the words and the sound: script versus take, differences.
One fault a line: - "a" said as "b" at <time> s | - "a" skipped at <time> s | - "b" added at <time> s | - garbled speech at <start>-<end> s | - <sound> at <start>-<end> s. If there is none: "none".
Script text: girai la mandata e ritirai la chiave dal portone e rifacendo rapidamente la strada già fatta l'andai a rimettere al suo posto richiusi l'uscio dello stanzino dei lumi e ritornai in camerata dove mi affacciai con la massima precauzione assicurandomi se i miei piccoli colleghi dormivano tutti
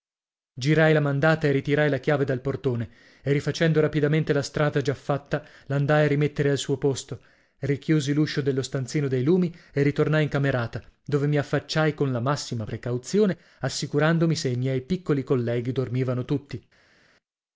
none